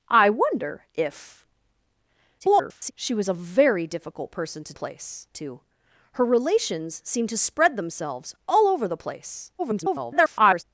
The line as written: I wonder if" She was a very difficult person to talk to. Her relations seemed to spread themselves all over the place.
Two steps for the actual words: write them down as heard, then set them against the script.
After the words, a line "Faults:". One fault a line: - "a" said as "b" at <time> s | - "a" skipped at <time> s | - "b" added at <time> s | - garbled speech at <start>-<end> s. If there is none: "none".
I wonder if" [garbled] She was a very difficult person to place to. Her relations seemed to spread themselves all over the place. [garbled]
Faults:
- garbled speech at 2.4-2.9 s
- "talk" said as "place" at 4.7 s
- garbled speech at 9.6-10.6 s